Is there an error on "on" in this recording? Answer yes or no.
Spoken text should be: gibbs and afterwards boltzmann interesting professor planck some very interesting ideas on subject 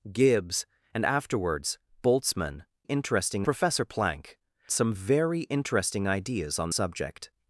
no